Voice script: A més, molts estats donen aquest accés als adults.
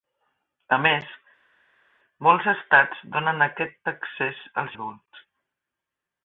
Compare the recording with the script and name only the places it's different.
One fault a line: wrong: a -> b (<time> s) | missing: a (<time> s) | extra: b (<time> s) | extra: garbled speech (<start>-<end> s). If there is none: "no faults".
no faults